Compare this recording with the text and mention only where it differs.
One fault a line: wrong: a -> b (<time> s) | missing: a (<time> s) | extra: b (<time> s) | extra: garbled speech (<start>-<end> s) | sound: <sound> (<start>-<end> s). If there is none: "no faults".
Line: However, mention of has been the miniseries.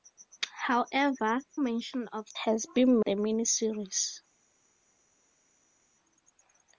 no faults